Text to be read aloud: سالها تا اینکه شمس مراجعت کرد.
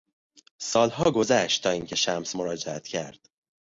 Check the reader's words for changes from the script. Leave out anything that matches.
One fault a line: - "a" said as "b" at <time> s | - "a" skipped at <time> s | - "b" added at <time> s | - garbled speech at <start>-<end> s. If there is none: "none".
- "گذشت" added at 1.1 s